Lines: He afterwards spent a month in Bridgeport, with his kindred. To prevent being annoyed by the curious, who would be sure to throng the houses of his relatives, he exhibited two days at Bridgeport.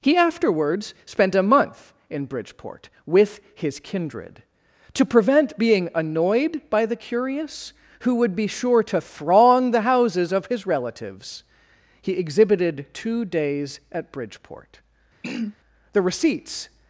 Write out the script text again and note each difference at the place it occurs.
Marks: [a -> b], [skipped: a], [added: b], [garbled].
He afterwards spent a month in Bridgeport, with his kindred. To prevent being annoyed by the curious, who would be sure to throng the houses of his relatives, he exhibited two days at Bridgeport. [added: The receipts]